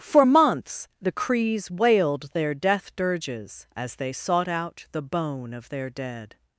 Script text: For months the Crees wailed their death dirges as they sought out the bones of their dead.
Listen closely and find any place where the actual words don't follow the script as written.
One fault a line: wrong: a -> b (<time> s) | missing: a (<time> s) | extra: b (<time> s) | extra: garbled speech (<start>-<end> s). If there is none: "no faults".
wrong: bones -> bone (5.0 s)